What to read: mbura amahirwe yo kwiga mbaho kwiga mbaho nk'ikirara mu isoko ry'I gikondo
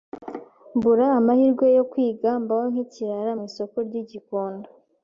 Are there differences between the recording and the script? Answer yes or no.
yes